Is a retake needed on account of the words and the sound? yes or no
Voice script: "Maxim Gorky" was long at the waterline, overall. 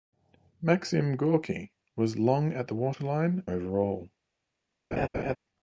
yes